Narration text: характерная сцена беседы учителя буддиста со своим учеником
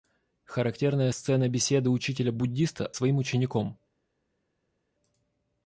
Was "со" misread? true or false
true